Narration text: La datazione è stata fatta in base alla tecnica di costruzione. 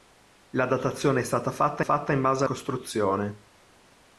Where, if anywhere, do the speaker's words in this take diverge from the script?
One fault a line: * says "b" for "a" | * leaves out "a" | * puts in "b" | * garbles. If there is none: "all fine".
* puts in "fatta"
* leaves out "alla tecnica di"